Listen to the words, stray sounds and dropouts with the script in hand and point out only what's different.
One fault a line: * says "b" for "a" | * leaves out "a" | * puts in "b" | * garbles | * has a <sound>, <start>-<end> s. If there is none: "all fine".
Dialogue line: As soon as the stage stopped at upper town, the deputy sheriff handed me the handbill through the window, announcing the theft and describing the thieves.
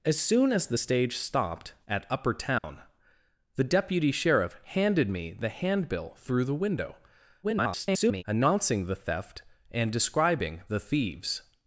* has a dropout, 2.6-2.6 s
* garbles